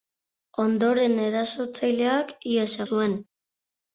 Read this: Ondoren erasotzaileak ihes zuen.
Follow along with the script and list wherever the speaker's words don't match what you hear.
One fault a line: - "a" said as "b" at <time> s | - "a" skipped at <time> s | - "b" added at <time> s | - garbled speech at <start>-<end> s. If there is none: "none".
none